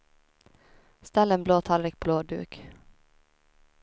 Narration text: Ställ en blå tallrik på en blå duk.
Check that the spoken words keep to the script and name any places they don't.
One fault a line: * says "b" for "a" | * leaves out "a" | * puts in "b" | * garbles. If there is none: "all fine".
* leaves out "en"